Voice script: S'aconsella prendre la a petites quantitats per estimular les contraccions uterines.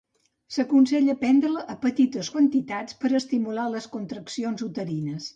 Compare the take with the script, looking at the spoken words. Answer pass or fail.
pass